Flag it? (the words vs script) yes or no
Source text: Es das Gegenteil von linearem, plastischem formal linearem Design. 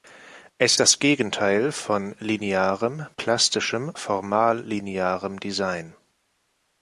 no